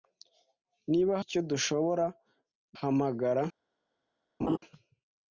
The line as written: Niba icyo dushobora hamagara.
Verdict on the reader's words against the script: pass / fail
pass